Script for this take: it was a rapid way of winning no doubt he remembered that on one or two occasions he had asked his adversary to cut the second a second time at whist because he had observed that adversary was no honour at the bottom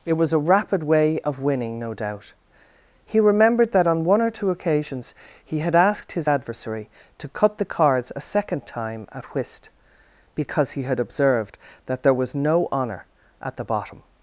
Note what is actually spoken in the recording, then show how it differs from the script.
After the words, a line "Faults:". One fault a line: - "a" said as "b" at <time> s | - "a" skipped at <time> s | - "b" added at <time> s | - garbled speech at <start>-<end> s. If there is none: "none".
it was a rapid way of winning no doubt he remembered that on one or two occasions he had asked his adversary to cut the cards a second time at whist because he had observed that there was no honour at the bottom
Faults:
- "second" said as "cards" at 7.6 s
- "adversary" said as "there" at 12.0 s